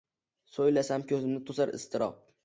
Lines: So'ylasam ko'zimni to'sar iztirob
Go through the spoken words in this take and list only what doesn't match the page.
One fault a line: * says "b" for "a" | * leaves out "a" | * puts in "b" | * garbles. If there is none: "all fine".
all fine